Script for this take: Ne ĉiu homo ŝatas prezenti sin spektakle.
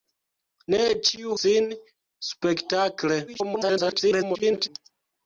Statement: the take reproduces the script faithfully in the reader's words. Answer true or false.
false